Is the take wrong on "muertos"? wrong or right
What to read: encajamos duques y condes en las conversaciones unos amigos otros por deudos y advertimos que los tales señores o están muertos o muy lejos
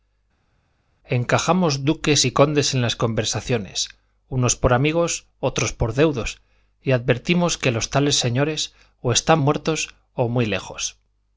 right